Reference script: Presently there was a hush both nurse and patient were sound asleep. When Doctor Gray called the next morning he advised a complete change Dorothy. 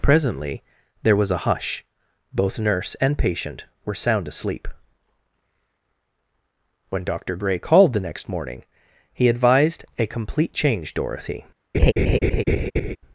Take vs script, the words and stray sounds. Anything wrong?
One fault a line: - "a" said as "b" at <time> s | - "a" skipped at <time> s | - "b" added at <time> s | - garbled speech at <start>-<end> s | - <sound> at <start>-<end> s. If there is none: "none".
- laugh at 11.7-13.0 s